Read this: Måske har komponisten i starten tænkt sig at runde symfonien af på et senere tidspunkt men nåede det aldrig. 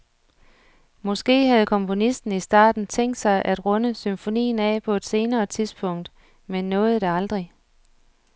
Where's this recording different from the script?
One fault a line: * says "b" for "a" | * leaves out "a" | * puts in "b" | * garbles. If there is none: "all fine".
* says "havde" for "har"